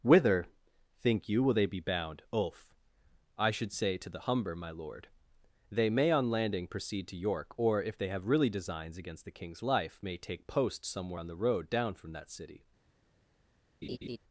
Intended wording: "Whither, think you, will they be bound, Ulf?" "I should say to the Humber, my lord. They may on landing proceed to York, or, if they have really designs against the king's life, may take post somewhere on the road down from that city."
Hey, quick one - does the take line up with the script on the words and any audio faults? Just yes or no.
no